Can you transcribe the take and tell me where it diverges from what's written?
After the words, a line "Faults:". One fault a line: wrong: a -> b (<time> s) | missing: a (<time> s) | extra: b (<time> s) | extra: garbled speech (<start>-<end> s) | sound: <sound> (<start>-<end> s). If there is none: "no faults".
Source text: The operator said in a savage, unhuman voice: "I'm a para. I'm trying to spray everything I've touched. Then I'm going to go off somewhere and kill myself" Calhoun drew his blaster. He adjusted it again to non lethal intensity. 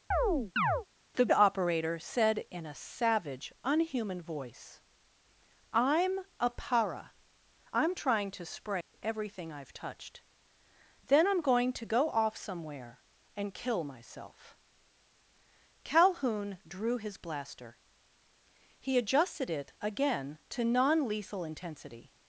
The operator said in a savage, unhuman voice: "I'm a para. I'm trying to spray everything I've touched. Then I'm going to go off somewhere and kill myself" Calhoun drew his blaster. He adjusted it again to non lethal intensity.
Faults:
sound: chirp (0.1-0.9 s)
sound: dropout (8.8-8.9 s)